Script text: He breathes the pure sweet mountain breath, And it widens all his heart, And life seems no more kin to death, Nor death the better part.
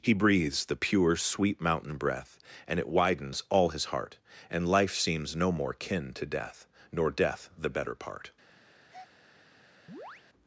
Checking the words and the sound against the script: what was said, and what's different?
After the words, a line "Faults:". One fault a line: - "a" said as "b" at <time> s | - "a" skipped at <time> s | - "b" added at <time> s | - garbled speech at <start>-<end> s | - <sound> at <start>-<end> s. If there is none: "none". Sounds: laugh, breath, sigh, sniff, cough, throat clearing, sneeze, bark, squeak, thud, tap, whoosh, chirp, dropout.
He breathes the pure sweet mountain breath, And it widens all his heart, And life seems no more kin to death, Nor death the better part.
Faults:
- breath at 8.9-9.1 s
- chirp at 9.9-10.2 s